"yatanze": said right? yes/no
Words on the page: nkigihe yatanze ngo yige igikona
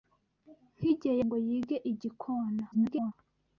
no